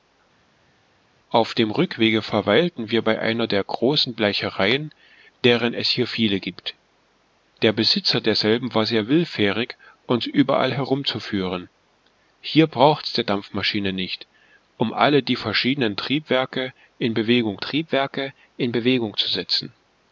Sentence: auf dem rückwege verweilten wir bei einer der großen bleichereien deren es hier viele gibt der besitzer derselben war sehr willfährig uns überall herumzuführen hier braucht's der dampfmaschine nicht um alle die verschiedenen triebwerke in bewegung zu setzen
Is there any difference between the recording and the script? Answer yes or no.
yes